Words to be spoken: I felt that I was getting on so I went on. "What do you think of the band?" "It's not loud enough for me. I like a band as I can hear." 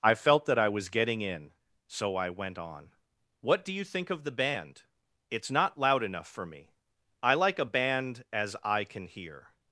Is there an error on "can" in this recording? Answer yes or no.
no